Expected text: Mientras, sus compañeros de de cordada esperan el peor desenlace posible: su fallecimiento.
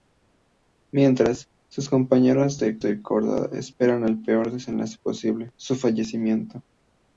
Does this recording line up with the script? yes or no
yes